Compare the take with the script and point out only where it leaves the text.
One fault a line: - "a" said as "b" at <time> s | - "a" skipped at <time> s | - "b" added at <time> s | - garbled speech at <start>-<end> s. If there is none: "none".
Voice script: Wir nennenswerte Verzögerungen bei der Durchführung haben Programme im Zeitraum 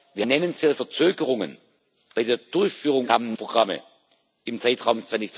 none